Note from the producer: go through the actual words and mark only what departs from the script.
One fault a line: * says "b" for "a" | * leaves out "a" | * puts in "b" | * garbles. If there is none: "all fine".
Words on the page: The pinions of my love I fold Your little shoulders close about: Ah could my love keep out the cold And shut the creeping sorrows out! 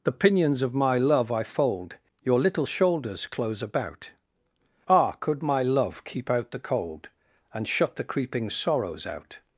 all fine